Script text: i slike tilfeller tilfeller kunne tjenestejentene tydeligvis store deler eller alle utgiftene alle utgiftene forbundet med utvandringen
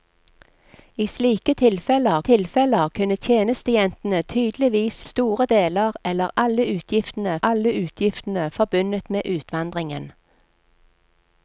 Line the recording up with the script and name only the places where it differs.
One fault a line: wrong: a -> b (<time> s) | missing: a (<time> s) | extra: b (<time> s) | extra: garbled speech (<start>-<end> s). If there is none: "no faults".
no faults